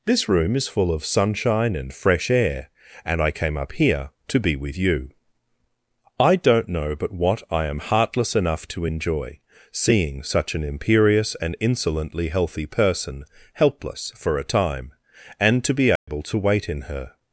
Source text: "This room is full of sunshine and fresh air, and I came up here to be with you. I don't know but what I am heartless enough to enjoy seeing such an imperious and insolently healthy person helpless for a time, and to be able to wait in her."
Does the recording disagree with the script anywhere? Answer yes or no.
no